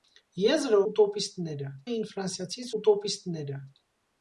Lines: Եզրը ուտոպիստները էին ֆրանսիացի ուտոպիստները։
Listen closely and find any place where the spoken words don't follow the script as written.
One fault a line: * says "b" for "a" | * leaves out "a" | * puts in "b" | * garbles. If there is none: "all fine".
all fine